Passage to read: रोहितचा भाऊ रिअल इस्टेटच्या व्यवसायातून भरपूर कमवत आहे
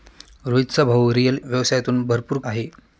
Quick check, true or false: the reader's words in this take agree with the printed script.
false